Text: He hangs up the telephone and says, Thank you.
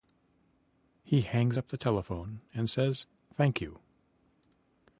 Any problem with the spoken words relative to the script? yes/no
no